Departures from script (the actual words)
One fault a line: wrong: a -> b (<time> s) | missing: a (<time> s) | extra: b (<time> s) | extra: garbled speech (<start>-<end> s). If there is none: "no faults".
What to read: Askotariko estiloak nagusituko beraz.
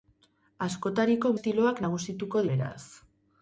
no faults